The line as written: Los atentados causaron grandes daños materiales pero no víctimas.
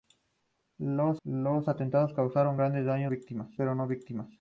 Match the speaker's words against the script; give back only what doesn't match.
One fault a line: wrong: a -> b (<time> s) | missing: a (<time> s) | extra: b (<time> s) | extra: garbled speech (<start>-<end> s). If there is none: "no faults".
extra: los (1.2 s)
wrong: materiales -> víctimas (3.1 s)